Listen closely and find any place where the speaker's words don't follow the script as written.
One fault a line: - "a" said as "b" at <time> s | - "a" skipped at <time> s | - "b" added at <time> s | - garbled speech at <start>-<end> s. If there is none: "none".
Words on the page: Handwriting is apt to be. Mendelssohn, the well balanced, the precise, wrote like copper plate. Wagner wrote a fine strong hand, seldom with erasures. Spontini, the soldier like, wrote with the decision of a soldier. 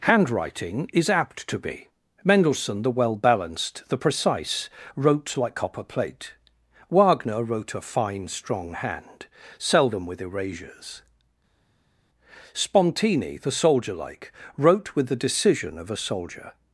none